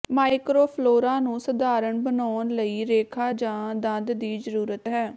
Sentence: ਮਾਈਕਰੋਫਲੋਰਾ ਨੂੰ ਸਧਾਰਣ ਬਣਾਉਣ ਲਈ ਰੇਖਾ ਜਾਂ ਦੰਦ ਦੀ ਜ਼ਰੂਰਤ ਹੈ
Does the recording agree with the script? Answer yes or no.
yes